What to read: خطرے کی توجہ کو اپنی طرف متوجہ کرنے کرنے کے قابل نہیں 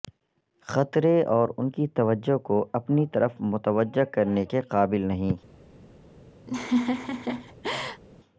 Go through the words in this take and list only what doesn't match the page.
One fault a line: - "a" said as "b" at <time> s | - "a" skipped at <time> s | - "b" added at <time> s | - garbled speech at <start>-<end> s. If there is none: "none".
- "اور ان" added at 1.2 s
- "کرنے" skipped at 4.5 s